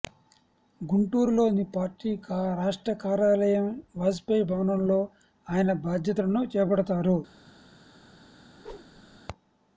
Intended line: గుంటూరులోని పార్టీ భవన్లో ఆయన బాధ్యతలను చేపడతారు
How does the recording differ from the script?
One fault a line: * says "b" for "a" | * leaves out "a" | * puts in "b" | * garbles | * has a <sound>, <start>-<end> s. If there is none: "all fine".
* puts in "రాష్ట్ర కార్యాలయం వాజ్పేయి"
* has a whoosh, 8.5-9.2 s